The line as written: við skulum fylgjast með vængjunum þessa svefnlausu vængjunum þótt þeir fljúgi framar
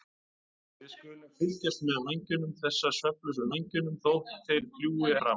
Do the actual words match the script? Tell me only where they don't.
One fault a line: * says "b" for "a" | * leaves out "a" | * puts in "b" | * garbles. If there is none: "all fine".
all fine